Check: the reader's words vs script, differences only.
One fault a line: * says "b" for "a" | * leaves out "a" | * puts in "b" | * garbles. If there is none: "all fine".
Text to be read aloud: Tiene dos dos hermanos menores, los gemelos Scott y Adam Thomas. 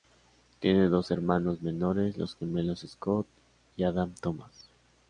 * leaves out "dos"